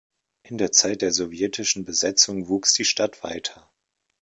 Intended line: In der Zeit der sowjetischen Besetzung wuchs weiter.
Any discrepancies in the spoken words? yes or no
yes